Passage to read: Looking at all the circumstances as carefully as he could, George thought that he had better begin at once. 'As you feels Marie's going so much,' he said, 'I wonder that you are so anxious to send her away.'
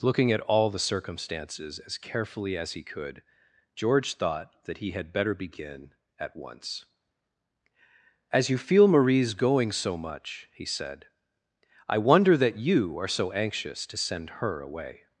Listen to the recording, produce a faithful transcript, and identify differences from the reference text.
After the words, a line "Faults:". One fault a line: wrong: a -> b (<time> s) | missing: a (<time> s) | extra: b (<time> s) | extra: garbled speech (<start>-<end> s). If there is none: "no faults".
Looking at all the circumstances as carefully as he could, George thought that he had better begin at once. 'As you feel Marie's going so much,' he said, 'I wonder that you are so anxious to send her away.'
Faults:
wrong: feels -> feel (8.6 s)